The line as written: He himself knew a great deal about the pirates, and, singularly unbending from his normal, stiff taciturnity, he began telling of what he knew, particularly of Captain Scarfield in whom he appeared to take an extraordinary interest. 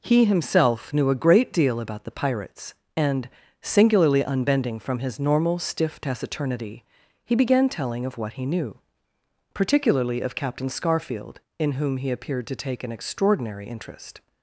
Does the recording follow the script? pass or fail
pass